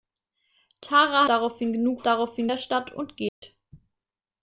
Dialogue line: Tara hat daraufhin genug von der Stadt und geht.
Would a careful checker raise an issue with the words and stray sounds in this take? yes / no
yes